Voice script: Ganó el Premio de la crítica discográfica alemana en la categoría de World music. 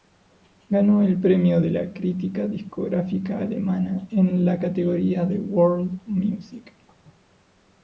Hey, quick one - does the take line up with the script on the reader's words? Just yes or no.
yes